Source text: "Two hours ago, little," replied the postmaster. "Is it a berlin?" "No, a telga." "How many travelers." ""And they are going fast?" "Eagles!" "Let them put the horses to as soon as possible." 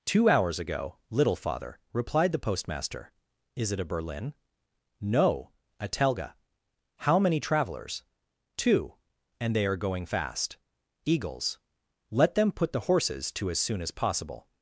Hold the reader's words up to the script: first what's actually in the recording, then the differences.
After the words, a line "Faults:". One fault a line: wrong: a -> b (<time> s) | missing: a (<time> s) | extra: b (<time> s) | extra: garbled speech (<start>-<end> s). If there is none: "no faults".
"Two hours ago, little father," replied the postmaster. "Is it a berlin?" "No, a telga." "How many travelers?" "Two." "And they are going fast?" "Eagles!" "Let them put the horses to as soon as possible."
Faults:
extra: father (1.4 s)
extra: Two (8.6 s)